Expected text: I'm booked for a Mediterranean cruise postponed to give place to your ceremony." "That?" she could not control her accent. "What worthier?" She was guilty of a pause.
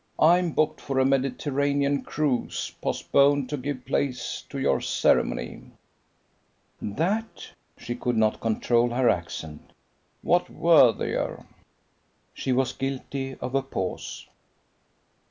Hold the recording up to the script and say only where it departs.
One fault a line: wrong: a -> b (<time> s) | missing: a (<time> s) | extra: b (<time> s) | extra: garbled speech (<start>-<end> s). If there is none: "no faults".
no faults